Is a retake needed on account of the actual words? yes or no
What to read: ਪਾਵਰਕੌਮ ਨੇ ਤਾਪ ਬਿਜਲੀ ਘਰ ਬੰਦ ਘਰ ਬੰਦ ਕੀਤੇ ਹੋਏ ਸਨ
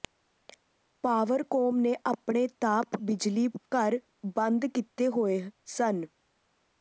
yes